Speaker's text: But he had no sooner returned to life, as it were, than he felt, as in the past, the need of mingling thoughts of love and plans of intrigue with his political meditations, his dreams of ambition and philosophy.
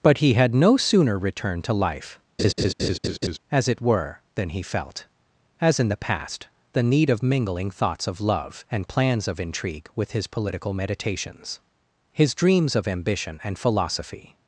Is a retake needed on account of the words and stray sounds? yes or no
yes